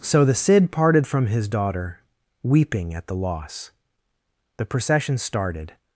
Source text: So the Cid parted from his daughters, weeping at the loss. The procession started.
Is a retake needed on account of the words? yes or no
yes